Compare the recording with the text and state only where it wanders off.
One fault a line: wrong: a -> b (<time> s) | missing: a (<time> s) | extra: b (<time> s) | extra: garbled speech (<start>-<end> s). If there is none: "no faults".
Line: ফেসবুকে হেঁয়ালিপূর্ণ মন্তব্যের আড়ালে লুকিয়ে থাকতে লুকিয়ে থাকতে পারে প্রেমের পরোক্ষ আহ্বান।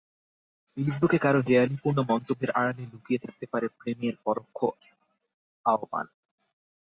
extra: কারও (1.2 s)
missing: লুকিয়ে থাকতে (3.5 s)